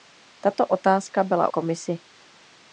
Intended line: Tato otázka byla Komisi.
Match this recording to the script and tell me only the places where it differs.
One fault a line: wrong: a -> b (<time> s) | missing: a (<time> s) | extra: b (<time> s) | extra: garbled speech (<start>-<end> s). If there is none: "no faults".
no faults